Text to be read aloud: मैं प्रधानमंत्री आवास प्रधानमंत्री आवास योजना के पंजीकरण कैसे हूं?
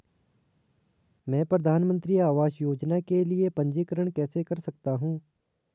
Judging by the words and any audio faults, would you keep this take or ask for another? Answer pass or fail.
fail